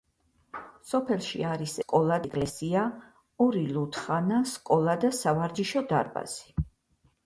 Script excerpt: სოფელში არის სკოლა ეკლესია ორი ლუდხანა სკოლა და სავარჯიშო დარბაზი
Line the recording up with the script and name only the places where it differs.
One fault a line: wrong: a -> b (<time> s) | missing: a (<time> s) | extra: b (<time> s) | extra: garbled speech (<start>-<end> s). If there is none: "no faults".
no faults